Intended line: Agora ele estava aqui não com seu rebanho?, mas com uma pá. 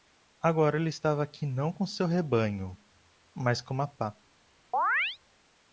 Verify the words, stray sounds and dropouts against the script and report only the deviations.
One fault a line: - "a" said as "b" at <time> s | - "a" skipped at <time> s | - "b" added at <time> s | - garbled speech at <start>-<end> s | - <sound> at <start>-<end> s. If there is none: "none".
- chirp at 4.7-5.2 s